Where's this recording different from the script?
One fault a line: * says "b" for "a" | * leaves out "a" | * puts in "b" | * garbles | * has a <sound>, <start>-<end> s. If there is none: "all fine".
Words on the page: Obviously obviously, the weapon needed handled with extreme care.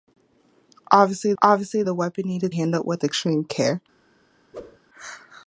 * has a whoosh, 4.5-4.8 s